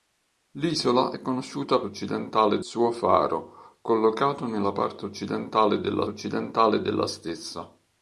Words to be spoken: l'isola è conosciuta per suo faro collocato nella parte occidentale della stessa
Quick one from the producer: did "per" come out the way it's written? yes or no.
no